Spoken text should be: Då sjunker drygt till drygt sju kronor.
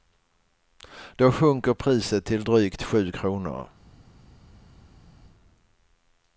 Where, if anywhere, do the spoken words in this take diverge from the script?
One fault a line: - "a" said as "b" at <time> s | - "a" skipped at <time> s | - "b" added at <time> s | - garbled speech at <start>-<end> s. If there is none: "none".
- "drygt" said as "priset" at 1.7 s